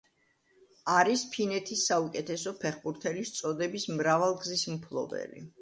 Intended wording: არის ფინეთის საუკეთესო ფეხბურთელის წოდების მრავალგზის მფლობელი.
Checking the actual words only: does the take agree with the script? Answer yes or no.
yes